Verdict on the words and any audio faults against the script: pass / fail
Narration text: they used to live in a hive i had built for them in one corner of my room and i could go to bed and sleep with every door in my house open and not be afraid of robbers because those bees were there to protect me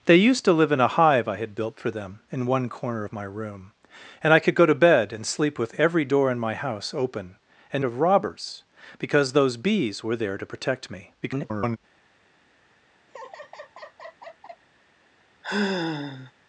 fail